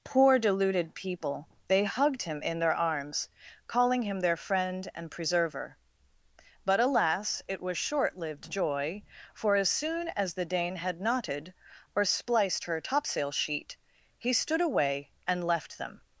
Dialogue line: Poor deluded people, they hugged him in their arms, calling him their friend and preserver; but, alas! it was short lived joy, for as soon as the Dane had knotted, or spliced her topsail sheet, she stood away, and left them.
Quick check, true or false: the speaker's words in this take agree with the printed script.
false